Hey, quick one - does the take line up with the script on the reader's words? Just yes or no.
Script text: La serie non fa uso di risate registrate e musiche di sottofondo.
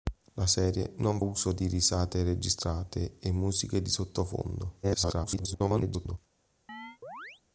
no